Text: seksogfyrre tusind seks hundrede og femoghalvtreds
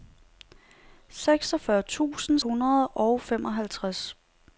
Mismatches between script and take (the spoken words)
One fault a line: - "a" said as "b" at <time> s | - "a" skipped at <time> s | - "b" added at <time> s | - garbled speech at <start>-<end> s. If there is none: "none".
- "seks" skipped at 2.4 s